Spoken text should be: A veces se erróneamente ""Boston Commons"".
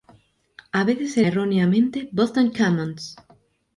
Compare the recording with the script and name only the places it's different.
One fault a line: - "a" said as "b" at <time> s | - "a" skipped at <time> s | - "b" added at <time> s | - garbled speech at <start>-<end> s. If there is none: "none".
none